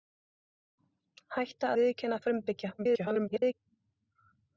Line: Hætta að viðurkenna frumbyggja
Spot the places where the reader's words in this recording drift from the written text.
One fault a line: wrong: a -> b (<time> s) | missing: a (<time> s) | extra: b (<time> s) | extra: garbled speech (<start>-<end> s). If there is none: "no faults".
missing: að (1.7 s)
extra: garbled speech (2.8-3.5 s)